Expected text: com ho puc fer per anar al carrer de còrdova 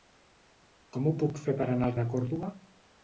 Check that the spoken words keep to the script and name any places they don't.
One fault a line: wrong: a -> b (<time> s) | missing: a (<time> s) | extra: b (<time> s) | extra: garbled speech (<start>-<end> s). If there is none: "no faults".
missing: carrer (1.9 s)